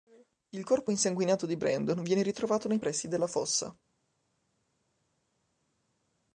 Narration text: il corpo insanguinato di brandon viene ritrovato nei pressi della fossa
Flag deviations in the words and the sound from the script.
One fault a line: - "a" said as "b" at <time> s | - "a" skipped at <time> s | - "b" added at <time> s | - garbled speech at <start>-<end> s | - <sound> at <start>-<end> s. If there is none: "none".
none